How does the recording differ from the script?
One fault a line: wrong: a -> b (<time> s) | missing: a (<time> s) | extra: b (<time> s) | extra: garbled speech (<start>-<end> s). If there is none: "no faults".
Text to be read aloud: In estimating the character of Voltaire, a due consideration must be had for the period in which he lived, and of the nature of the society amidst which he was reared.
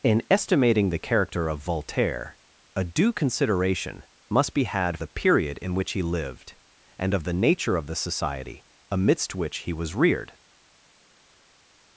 missing: for (5.0 s)